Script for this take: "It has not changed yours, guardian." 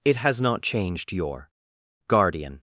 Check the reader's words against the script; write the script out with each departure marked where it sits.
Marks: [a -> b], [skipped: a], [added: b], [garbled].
"It has not changed [yours, -> your] guardian."